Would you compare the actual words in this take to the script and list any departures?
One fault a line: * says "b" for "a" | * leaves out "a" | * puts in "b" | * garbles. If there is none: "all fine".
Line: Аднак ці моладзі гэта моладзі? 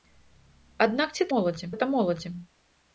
all fine